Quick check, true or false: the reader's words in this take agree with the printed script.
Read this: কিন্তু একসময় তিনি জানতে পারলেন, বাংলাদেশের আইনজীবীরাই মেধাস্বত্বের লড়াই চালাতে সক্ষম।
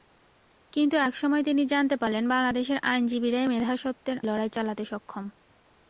true